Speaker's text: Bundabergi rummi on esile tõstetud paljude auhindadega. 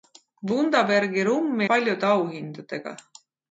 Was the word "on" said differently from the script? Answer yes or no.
yes